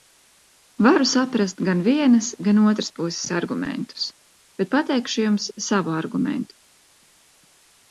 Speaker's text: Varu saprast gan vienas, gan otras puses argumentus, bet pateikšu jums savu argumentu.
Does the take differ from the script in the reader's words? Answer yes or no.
no